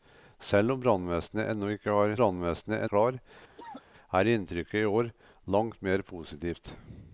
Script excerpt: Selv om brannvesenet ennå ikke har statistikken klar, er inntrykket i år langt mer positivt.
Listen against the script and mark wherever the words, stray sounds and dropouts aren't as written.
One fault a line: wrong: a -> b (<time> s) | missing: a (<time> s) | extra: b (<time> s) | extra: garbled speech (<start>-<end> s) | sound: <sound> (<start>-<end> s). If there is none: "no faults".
wrong: statistikken -> brannvesenet (2.2 s)
sound: cough (3.6-3.8 s)